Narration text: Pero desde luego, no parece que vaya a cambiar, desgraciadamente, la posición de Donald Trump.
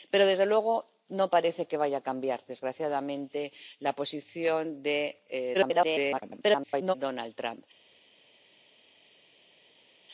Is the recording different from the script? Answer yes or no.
yes